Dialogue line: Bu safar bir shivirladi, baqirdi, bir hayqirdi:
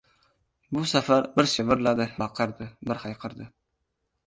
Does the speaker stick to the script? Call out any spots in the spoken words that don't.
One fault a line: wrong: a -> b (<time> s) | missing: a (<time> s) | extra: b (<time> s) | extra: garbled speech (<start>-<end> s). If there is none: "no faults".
no faults